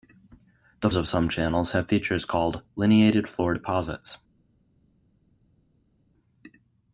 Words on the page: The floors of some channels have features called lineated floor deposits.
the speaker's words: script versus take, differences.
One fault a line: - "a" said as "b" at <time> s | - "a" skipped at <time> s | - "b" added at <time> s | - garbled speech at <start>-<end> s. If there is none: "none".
- "floors" skipped at 0.9 s